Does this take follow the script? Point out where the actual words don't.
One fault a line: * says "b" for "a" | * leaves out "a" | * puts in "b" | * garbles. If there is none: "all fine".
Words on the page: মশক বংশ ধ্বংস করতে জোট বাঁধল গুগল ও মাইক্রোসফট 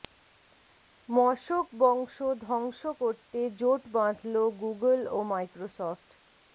all fine